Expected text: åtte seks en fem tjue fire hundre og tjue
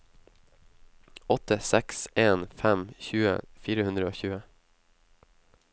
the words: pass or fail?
pass